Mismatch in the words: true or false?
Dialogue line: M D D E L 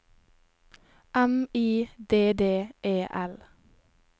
true